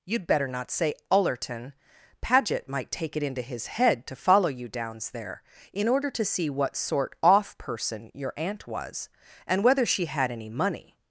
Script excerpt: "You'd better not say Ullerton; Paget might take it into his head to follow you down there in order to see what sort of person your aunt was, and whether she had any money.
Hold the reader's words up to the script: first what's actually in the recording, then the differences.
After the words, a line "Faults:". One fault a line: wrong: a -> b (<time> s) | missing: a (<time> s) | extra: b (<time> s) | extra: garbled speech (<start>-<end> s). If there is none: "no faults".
"You'd better not say Ullerton; Paget might take it into his head to follow you downs there in order to see what sort off person your aunt was, and whether she had any money.
Faults:
wrong: down -> downs (4.7 s)
wrong: of -> off (7.2 s)